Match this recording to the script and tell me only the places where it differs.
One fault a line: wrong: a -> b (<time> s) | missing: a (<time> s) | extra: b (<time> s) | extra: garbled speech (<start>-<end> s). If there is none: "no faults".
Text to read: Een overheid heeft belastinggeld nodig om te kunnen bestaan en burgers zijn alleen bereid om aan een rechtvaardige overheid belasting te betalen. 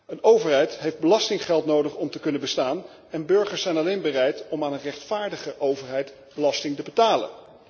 no faults